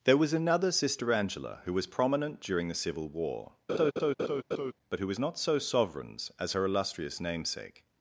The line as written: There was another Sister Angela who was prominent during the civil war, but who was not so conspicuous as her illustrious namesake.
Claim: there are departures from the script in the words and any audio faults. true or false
true